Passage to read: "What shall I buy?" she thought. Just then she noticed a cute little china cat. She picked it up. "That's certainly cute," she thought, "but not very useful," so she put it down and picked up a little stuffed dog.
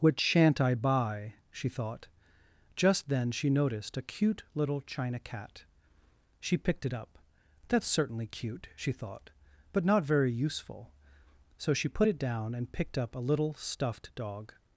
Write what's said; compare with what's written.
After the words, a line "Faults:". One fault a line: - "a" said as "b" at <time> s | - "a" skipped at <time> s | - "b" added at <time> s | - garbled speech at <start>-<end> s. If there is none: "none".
"What shan't I buy?" she thought. Just then she noticed a cute little china cat. She picked it up. "That's certainly cute," she thought, "but not very useful," so she put it down and picked up a little stuffed dog.
Faults:
- "shall" said as "shan't" at 0.2 s